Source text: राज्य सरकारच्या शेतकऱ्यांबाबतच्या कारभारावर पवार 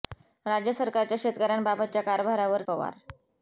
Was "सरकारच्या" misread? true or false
false